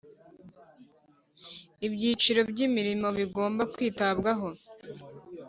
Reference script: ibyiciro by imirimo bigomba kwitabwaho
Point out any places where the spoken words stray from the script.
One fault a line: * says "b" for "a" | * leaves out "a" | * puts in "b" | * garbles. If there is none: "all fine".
all fine